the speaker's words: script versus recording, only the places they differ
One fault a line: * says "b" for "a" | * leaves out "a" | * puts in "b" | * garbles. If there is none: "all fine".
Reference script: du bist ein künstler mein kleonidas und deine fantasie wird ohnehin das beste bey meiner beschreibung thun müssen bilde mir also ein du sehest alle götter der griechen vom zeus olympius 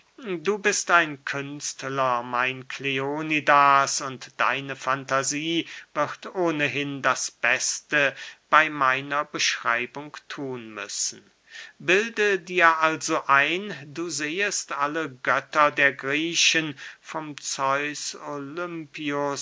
* says "dir" for "mir"